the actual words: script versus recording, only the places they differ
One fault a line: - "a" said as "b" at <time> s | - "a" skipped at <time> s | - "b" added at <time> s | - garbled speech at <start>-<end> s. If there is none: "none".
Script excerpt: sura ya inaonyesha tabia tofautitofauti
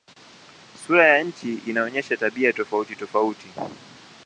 - "nchi" added at 1.2 s